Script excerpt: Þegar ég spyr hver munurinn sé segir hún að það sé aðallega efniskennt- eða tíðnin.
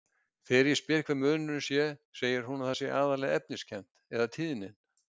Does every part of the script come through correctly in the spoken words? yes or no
yes